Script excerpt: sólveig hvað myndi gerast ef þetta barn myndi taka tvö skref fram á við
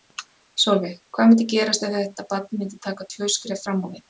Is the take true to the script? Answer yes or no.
yes